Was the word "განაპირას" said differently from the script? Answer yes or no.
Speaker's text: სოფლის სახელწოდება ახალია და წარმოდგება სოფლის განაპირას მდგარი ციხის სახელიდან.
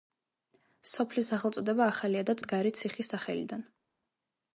yes